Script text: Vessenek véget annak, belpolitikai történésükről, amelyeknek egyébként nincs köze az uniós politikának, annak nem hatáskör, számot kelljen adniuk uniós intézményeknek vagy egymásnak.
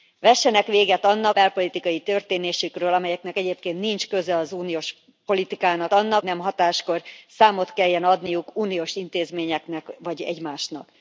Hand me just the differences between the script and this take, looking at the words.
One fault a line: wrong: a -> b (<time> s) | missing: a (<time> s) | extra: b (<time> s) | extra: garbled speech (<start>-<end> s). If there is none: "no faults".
no faults